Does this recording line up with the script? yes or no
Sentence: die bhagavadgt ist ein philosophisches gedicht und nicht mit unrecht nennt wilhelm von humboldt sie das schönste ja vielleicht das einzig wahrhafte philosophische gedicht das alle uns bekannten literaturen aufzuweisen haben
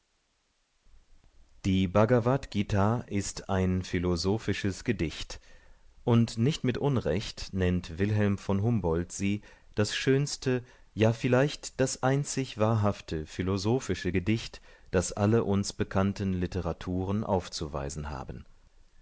yes